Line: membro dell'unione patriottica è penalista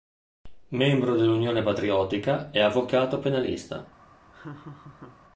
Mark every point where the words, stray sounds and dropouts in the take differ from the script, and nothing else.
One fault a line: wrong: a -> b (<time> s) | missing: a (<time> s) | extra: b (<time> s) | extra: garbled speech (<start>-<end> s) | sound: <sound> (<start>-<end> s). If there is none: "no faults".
extra: avvocato (2.6 s)
sound: laugh (4.3-5.2 s)